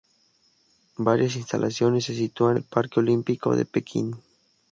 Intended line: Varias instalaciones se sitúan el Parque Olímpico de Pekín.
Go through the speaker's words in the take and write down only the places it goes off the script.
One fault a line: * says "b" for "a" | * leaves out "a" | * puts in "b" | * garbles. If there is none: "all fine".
all fine